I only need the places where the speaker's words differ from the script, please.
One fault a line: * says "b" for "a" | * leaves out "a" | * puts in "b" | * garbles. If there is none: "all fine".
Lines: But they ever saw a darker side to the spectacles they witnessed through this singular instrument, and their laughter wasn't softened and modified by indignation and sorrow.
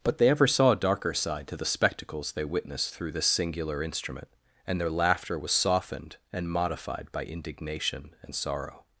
* says "was" for "wasn't"